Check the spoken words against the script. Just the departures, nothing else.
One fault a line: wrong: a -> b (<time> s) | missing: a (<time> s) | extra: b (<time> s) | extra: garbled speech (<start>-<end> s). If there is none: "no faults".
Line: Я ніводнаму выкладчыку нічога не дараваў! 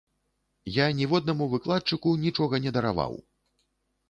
no faults